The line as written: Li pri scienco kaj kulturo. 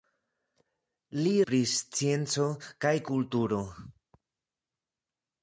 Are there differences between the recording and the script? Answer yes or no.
no